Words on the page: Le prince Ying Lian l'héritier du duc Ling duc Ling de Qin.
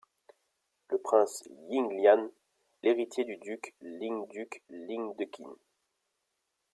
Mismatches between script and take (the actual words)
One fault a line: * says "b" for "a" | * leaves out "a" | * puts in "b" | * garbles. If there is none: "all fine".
all fine